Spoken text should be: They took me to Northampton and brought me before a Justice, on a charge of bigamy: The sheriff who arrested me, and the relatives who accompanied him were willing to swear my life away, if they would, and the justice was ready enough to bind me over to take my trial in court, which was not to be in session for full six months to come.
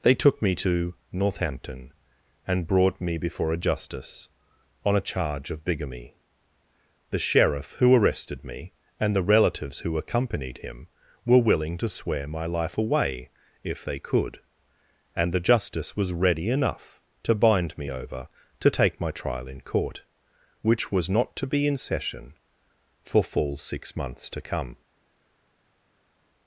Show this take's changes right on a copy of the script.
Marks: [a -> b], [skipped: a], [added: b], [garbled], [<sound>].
They took me to Northampton and brought me before a Justice, on a charge of bigamy: The sheriff who arrested me, and the relatives who accompanied him were willing to swear my life away, if they [would, -> could] and the justice was ready enough to bind me over to take my trial in court, which was not to be in session for full six months to come.